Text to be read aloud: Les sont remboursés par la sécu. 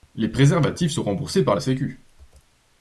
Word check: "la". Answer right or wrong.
right